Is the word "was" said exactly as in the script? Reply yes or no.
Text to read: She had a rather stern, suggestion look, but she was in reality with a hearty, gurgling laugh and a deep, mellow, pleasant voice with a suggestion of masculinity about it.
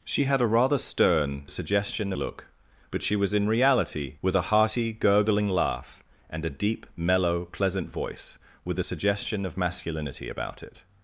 yes